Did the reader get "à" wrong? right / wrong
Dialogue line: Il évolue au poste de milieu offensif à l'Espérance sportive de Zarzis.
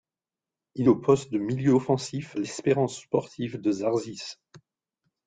wrong